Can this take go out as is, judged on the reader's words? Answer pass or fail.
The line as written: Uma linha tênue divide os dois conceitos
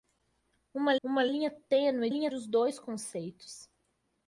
fail